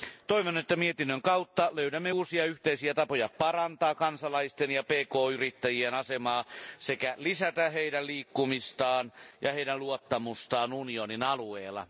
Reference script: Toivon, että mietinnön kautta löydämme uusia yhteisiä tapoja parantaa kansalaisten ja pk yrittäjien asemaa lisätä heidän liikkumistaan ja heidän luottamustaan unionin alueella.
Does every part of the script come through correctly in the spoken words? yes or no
no